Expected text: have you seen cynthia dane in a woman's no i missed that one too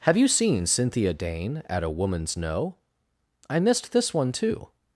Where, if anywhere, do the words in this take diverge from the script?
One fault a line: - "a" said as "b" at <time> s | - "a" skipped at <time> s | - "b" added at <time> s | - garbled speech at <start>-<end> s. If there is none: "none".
- "in" said as "at" at 1.7 s
- "that" said as "this" at 3.9 s